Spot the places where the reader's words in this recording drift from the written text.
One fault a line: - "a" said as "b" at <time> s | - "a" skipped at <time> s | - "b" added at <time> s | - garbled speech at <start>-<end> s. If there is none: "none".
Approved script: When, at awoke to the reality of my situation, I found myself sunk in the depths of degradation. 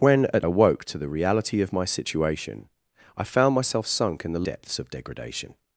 none